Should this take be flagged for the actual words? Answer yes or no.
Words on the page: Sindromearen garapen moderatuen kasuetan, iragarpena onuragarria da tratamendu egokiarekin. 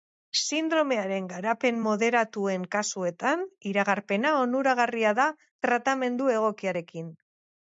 no